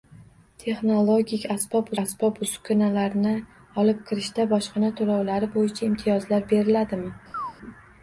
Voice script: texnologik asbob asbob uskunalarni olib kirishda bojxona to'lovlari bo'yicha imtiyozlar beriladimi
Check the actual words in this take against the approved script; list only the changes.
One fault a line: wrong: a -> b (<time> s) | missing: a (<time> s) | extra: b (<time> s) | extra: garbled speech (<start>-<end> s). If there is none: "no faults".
no faults